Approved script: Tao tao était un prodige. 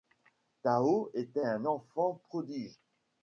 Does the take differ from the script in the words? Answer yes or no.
yes